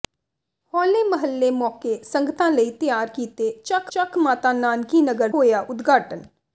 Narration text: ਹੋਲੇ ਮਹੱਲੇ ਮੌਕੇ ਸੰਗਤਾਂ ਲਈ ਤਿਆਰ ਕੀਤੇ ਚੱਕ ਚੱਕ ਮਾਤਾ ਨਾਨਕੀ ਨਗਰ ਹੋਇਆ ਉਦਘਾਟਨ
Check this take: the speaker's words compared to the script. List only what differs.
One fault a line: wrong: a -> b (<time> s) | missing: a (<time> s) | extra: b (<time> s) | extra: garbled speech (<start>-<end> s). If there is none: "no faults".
no faults